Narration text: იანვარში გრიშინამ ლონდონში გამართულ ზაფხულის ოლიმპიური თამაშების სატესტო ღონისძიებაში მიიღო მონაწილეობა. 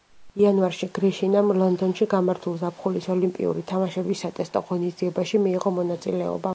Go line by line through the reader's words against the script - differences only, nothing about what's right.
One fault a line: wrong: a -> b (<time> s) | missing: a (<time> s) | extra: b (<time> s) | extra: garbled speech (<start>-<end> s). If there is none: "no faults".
no faults